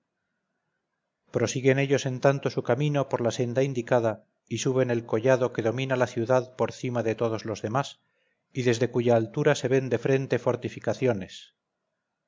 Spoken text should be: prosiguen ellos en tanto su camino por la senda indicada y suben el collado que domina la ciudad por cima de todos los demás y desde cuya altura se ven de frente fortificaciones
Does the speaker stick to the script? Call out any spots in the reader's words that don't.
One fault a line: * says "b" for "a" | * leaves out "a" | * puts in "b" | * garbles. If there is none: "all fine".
all fine